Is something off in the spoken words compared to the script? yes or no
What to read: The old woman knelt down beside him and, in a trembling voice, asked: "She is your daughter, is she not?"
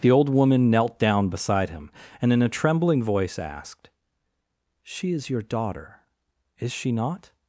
no